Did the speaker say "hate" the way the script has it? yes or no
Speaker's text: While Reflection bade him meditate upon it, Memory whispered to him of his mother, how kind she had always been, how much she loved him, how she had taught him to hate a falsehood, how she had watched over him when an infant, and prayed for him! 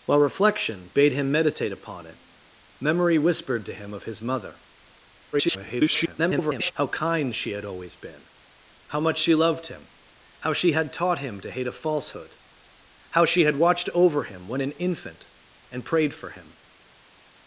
yes